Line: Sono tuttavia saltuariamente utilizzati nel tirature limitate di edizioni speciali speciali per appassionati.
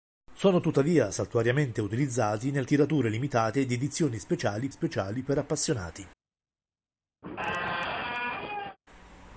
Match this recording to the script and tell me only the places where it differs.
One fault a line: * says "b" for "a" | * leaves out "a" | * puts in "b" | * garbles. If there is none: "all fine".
all fine